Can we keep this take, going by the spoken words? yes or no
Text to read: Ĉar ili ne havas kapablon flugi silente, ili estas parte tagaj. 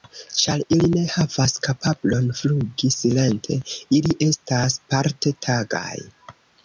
yes